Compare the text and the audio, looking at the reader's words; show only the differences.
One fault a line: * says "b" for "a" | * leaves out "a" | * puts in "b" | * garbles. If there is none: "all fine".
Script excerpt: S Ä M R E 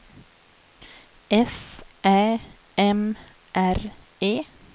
all fine